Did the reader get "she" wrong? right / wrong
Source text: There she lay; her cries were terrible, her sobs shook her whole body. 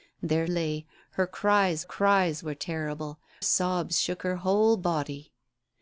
wrong